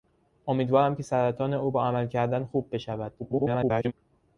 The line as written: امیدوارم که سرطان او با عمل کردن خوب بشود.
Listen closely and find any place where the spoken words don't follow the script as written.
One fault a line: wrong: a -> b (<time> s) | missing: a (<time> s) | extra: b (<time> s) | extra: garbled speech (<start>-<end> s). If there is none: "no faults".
extra: garbled speech (3.2-3.9 s)